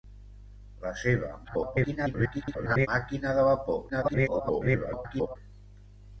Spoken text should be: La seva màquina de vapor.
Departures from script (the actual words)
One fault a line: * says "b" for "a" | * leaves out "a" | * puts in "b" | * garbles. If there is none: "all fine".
* garbles
* garbles